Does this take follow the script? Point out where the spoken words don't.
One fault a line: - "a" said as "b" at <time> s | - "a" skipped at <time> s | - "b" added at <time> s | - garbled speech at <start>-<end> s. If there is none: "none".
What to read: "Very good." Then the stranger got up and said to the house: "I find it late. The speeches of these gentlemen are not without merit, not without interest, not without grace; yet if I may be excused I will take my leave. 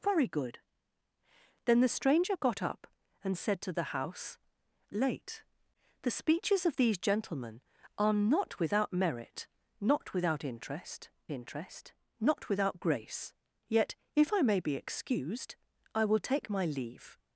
- "I find it" skipped at 4.4 s
- "interest" added at 11.3 s